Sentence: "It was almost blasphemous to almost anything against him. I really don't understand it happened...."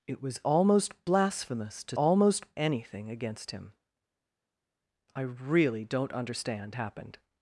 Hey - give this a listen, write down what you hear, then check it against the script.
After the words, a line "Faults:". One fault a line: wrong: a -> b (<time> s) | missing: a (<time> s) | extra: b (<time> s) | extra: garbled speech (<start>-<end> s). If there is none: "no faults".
"It was almost blasphemous to almost anything against him. I really don't understand it happened...."
Faults:
no faults